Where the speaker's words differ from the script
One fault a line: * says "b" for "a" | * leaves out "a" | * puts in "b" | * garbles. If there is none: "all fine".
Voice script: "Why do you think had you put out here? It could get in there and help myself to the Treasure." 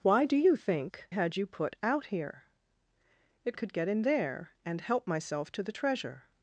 all fine